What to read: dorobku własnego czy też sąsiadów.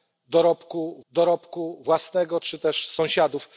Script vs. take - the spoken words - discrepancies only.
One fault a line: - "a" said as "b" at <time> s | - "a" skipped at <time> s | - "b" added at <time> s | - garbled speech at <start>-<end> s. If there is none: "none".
- "dorobku" added at 1.1 s